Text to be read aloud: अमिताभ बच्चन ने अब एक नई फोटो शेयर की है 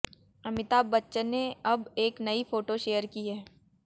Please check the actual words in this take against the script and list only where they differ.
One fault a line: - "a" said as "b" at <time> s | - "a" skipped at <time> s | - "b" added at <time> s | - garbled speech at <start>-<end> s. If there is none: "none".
none